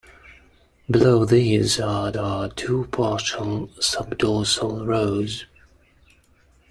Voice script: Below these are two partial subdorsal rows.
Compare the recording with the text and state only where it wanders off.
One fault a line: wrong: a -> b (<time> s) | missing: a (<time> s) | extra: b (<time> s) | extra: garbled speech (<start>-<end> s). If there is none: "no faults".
extra: are (2.1 s)